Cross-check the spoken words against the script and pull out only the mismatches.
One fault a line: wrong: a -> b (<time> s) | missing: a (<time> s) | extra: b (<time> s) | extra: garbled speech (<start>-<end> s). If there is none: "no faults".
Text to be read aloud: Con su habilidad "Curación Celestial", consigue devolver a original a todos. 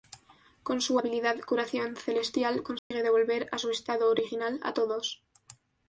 extra: su estado (3.6 s)